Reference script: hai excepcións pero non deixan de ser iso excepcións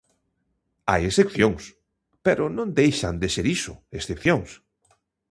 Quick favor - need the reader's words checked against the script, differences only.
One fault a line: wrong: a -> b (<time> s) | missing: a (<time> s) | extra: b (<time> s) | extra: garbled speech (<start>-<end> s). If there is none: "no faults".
no faults